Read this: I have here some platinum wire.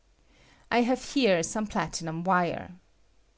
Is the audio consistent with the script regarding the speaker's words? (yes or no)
yes